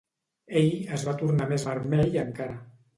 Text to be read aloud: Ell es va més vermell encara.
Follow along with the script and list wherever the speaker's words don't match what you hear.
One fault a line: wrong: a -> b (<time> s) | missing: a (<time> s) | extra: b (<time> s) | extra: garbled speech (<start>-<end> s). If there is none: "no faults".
extra: tornar (1.2 s)